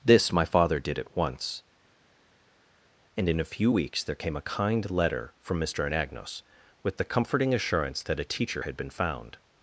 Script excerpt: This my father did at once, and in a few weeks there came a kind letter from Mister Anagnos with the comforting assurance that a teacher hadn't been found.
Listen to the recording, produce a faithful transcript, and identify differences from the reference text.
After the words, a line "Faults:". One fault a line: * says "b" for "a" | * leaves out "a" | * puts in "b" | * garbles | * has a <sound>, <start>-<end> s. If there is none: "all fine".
This my father did at once, and in a few weeks there came a kind letter from Mister Anagnos with the comforting assurance that a teacher had been found.
Faults:
* says "had" for "hadn't"